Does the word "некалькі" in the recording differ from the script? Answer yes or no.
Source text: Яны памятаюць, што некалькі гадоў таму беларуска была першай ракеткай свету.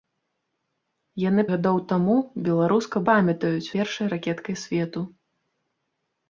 yes